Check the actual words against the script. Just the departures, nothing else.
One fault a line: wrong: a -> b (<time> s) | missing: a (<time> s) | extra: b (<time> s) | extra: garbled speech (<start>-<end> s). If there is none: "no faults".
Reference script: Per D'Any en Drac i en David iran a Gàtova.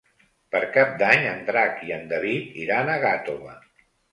extra: Cap (0.8 s)